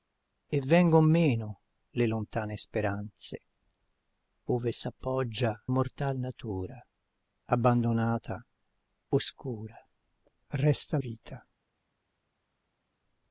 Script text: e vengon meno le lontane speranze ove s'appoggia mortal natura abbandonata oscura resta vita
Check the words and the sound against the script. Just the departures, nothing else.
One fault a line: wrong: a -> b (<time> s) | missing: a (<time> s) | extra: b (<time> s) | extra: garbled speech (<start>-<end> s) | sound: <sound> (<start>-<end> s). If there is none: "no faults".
no faults